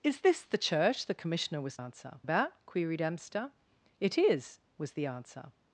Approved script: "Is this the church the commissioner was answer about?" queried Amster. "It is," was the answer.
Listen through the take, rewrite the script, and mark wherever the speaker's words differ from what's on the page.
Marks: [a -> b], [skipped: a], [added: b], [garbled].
"Is this the church the commissioner was answer about?" queried Amster. "It is," was the answer.